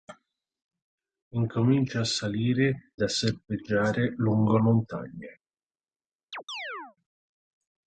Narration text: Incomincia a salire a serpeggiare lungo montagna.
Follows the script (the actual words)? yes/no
yes